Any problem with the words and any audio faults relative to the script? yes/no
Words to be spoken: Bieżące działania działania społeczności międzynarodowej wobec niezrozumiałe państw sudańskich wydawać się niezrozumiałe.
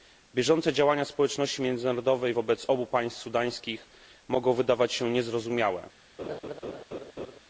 yes